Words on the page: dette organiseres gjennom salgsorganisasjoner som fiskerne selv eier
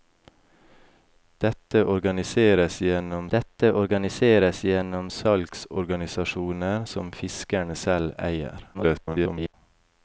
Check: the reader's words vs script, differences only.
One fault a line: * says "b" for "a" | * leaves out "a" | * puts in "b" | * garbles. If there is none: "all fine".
* puts in "dette organiseres gjennom"
* garbles